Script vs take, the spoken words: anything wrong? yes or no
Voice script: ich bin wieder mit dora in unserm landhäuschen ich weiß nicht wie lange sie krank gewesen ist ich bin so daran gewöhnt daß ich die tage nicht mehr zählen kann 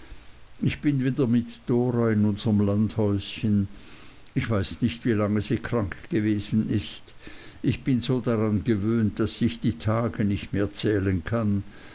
no